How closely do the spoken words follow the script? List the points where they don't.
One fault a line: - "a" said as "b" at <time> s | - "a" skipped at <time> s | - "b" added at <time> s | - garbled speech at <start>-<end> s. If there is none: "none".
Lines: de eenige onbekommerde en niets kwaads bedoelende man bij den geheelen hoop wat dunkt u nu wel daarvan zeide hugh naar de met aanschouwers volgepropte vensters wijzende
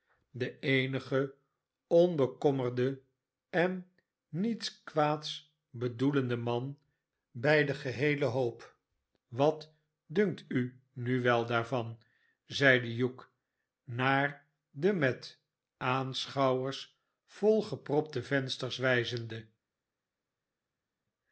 none